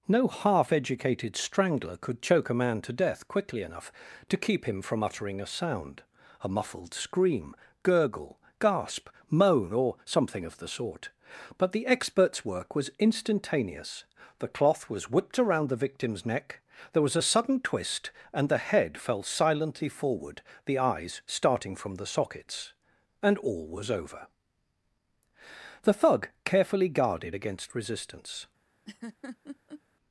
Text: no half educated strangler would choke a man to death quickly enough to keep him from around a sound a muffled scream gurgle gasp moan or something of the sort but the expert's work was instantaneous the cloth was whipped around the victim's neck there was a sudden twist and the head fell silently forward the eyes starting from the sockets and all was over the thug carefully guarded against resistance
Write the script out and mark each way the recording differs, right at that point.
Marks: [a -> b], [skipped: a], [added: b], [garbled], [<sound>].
no half educated strangler [would -> could] choke a man to death quickly enough to keep him from [around -> uttering] a sound a muffled scream gurgle gasp moan or something of the sort but the expert's work was instantaneous the cloth was whipped around the victim's neck there was a sudden twist and the head fell silently forward the eyes starting from the sockets and all was over the thug carefully guarded against resistance [laugh]